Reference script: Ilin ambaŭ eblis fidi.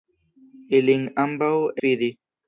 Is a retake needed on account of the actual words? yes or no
yes